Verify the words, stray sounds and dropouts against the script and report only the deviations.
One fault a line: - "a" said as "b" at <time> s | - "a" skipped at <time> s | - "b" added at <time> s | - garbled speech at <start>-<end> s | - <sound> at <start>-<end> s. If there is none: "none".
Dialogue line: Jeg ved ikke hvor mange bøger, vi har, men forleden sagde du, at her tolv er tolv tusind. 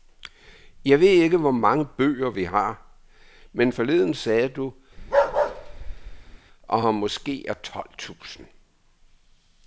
- bark at 5.0-6.4 s
- "tolv" said as "måske" at 6.9 s